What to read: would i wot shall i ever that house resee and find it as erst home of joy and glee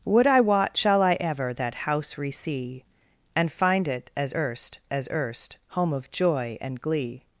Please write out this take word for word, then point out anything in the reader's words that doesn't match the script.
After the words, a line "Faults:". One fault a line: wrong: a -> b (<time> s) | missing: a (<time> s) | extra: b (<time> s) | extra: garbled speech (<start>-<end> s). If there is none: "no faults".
would i wot shall i ever that house resee and find it as erst as erst home of joy and glee
Faults:
extra: as erst (4.9 s)